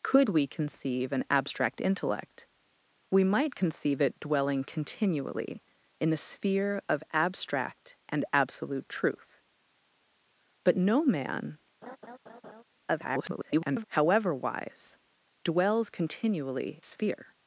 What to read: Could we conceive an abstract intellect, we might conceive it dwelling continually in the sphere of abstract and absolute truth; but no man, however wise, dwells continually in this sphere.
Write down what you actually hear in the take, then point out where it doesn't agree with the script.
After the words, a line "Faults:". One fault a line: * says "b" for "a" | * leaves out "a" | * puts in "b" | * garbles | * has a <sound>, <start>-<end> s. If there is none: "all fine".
Could we conceive an abstract intellect, we might conceive it dwelling continually in the sphere of abstract and absolute truth; but no man, [garbled] however wise, dwells continually sphere.
Faults:
* has a laugh, 11.8-12.6 s
* garbles
* leaves out "in this"